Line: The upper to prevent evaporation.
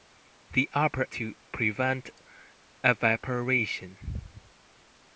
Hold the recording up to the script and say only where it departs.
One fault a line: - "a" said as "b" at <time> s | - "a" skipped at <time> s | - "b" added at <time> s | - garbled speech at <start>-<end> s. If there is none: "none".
none